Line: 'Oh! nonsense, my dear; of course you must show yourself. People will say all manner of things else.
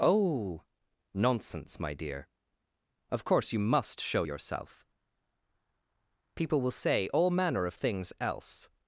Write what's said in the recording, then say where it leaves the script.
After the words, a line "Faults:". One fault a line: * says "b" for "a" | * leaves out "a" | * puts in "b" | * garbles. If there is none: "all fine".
'Oh! nonsense, my dear; of course you must show yourself. People will say all manner of things else.
Faults:
all fine